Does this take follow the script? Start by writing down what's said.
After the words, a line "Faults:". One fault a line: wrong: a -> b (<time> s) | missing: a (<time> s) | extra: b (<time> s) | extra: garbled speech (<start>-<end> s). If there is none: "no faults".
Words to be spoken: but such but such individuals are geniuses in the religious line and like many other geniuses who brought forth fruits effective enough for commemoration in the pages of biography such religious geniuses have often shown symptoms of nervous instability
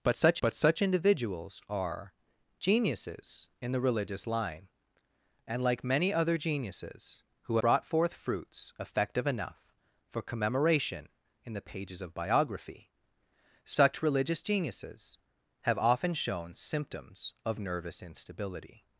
but such but such individuals are geniuses in the religious line and like many other geniuses who brought forth fruits effective enough for commemoration in the pages of biography such religious geniuses have often shown symptoms of nervous instability
Faults:
no faults